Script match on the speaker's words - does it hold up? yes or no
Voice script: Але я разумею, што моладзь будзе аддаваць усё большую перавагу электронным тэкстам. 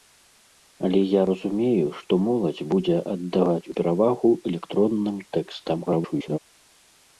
no